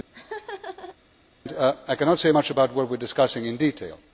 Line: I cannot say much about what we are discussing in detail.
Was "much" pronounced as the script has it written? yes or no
yes